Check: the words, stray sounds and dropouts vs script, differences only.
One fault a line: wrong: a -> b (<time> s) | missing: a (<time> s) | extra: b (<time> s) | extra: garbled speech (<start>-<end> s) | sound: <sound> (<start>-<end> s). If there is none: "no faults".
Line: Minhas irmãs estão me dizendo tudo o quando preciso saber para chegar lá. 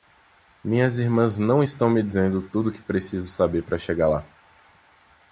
extra: não (1.4 s)
wrong: quando -> que (2.7 s)